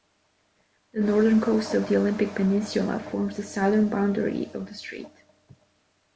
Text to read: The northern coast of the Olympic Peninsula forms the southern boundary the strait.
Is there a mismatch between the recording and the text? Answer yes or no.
yes